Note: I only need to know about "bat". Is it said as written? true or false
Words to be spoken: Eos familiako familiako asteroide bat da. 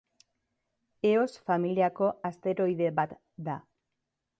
true